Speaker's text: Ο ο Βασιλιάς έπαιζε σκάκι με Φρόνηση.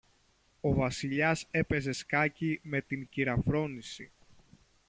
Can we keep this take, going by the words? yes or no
no